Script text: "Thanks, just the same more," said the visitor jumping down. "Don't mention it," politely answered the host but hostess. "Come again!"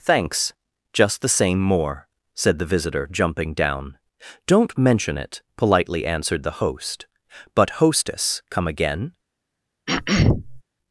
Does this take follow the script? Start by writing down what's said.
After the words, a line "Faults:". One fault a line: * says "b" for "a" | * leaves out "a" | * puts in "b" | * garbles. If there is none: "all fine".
"Thanks, just the same more," said the visitor jumping down. "Don't mention it," politely answered the host but hostess. "Come again!"
Faults:
all fine